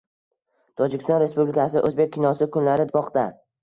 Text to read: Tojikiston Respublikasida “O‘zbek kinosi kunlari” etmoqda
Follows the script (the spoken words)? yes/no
yes